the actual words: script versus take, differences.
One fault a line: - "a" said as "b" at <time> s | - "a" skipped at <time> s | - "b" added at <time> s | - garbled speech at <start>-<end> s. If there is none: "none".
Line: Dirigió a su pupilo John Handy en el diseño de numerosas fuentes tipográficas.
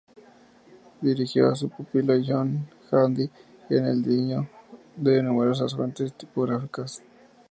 none